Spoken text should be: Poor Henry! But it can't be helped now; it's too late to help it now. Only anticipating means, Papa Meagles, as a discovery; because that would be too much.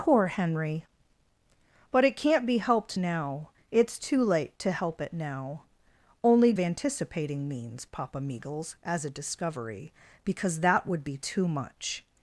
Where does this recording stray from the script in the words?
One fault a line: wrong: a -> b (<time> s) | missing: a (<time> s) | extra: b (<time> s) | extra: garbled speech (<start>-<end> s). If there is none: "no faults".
no faults